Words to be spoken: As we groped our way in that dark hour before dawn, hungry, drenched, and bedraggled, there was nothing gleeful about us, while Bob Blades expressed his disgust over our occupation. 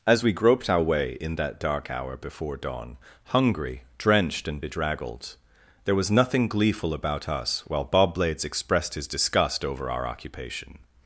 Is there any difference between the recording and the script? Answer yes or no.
no